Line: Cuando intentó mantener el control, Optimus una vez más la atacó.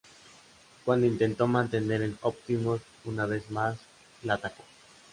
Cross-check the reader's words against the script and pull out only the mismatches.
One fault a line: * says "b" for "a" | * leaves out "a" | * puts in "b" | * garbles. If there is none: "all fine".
* leaves out "control"